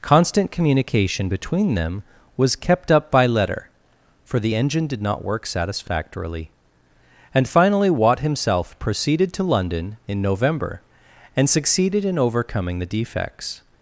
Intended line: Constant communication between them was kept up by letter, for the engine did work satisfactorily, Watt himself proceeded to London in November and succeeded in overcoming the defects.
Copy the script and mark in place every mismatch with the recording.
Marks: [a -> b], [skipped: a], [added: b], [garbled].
Constant communication between them was kept up by letter, for the engine did [added: not] work satisfactorily, [added: and finally] Watt himself proceeded to London in November and succeeded in overcoming the defects.